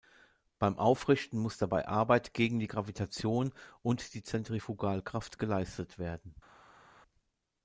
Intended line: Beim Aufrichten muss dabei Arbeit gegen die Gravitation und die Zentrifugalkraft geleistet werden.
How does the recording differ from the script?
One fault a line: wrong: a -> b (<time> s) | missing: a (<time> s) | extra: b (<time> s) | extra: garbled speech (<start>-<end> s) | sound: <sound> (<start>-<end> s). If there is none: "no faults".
no faults